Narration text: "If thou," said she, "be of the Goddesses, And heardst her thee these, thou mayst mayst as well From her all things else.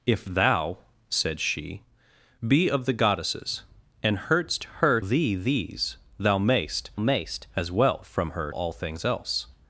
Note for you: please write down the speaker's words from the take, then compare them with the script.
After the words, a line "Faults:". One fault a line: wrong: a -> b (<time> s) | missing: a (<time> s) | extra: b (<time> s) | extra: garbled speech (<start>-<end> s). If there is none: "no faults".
"If thou," said she, "be of the Goddesses, And heardst her thee these, thou mayst mayst as well From her all things else.
Faults:
no faults